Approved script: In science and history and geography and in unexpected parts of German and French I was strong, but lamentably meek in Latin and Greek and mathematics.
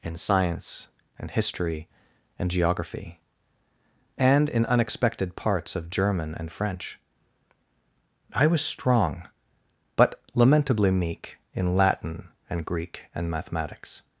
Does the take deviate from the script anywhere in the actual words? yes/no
no